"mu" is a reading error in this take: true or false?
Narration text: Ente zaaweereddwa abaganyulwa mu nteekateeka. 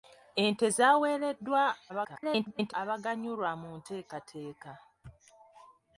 false